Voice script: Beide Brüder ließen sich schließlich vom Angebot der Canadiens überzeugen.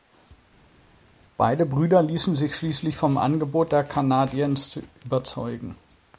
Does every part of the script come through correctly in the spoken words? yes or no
yes